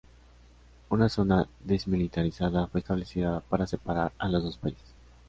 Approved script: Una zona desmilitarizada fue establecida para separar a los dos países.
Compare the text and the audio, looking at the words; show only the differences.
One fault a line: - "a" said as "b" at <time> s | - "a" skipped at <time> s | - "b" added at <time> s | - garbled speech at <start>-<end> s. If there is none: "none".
none